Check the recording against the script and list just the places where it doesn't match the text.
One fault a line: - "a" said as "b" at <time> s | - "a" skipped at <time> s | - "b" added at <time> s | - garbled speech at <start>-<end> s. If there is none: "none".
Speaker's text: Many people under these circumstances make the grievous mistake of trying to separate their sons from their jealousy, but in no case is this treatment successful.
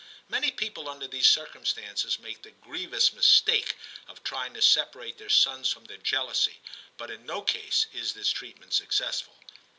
none